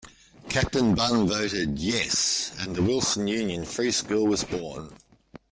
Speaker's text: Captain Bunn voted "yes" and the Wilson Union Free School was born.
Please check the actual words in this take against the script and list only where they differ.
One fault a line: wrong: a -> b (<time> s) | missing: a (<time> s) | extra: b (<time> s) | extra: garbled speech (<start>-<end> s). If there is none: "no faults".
no faults